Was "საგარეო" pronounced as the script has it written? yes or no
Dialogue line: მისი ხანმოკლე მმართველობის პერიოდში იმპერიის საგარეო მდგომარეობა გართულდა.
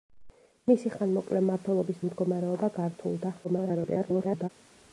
no